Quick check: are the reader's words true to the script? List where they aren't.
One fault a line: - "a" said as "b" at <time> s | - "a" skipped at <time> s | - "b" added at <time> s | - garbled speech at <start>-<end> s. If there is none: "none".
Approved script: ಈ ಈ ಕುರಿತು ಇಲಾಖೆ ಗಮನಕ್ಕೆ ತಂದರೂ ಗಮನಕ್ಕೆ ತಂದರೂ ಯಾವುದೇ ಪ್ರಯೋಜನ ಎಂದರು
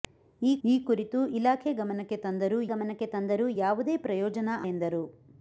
none